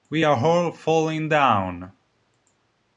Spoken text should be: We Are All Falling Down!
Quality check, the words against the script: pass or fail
pass